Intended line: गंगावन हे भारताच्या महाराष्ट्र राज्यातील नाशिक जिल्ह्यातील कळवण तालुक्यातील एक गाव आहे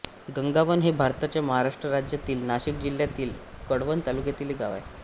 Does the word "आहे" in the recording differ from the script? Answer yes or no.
no